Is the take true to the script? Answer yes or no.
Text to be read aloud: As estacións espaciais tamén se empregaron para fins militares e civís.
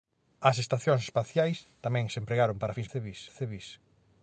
no